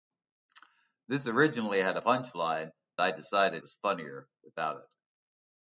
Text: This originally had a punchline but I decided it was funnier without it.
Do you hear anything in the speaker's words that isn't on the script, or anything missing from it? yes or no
yes